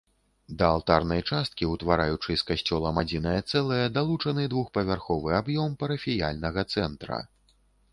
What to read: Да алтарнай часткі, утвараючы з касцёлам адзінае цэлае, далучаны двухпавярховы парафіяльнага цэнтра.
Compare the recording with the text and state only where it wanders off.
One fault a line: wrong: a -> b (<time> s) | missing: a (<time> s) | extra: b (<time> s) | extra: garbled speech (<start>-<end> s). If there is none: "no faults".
extra: аб'ём (5.4 s)